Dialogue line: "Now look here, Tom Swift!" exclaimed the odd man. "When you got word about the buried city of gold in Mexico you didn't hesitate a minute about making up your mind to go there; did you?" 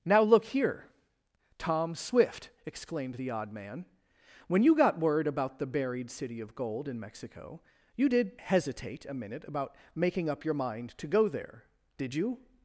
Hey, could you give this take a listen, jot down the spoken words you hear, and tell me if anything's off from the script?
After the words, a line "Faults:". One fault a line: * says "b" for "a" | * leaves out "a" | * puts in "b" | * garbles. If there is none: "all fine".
"Now look here, Tom Swift!" exclaimed the odd man. "When you got word about the buried city of gold in Mexico you did hesitate a minute about making up your mind to go there; did you?"
Faults:
* says "did" for "didn't"